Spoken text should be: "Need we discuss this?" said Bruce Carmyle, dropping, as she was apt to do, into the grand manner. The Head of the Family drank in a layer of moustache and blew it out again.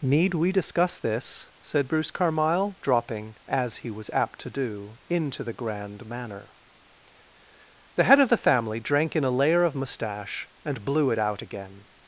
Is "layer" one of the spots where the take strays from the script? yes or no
no